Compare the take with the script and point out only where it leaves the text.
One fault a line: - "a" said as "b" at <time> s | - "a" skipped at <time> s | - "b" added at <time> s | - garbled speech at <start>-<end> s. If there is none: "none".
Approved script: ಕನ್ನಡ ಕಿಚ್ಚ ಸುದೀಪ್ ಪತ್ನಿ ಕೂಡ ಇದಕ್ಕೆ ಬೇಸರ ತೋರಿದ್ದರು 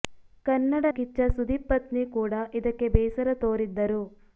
none